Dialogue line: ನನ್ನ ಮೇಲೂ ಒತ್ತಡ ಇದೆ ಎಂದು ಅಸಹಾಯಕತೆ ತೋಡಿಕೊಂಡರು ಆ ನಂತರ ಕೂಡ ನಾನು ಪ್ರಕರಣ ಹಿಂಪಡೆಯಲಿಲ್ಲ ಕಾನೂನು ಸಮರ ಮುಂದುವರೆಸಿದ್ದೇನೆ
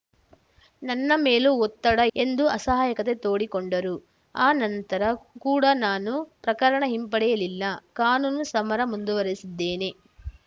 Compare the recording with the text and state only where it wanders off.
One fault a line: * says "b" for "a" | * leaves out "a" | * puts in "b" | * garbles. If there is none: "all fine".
* leaves out "ಇದೆ"